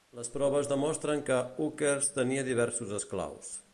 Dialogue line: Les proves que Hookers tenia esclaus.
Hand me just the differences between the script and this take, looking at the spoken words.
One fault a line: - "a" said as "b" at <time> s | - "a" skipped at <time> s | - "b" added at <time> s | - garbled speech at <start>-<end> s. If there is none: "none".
- "demostren" added at 0.7 s
- "diversos" added at 2.5 s